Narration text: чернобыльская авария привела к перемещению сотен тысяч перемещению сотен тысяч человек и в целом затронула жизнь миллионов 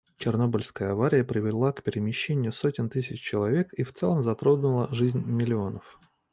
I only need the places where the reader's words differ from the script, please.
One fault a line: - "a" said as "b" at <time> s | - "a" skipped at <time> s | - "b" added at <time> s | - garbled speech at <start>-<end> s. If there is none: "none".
- "перемещению сотен тысяч" skipped at 3.2 s